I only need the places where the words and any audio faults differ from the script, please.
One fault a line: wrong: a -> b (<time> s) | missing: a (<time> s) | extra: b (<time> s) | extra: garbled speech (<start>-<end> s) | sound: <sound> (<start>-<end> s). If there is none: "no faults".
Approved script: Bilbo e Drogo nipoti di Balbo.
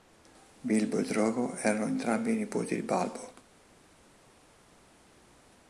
extra: erano entrambi (1.6 s)